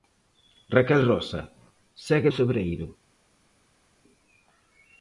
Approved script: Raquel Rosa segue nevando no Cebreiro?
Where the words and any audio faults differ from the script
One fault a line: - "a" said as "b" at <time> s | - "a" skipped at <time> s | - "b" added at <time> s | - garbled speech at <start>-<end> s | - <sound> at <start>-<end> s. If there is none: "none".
- "nevando no" skipped at 2.3 s